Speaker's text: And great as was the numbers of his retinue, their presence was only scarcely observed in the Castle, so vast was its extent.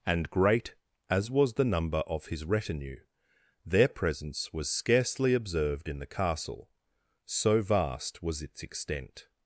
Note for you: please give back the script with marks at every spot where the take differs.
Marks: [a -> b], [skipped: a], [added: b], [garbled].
And great as was the [numbers -> number] of his retinue, their presence was [skipped: only] scarcely observed in the Castle, so vast was its extent.